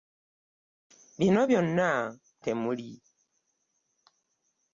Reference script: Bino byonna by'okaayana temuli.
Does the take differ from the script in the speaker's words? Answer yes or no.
yes